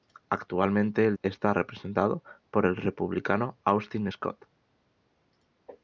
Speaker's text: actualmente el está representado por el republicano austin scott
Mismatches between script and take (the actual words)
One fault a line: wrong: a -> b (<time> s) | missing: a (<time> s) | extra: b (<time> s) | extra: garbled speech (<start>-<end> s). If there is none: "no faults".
no faults